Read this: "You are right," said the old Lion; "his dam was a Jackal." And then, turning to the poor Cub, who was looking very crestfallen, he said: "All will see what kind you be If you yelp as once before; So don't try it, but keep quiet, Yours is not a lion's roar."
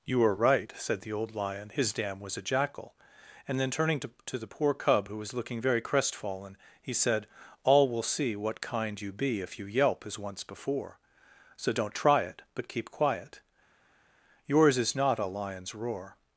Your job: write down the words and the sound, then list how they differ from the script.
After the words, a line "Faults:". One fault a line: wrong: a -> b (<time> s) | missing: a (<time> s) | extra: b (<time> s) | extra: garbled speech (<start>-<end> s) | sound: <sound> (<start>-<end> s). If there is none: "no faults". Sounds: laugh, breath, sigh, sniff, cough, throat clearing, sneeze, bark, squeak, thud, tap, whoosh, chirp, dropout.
"You are right," said the old Lion; "his dam was a Jackal." And then, turning to to the poor Cub, who was looking very crestfallen, he said: "All will see what kind you be If you yelp as once before; So don't try it, but keep quiet, Yours is not a lion's roar."
Faults:
extra: to (4.2 s)